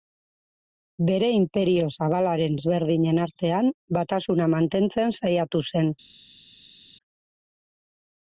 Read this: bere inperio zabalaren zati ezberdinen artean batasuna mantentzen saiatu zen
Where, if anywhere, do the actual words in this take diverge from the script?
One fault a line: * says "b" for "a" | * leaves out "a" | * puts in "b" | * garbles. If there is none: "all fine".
* leaves out "zati"